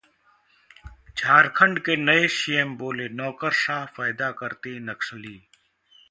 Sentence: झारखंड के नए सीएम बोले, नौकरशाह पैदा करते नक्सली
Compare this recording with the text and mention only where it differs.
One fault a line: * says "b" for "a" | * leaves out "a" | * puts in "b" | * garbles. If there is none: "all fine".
all fine